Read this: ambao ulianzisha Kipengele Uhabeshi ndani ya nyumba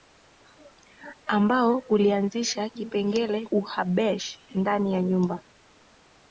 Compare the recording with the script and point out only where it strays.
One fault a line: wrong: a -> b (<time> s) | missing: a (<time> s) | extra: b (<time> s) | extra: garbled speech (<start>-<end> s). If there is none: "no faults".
no faults